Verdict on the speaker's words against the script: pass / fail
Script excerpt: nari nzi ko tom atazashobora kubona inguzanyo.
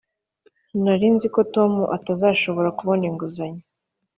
pass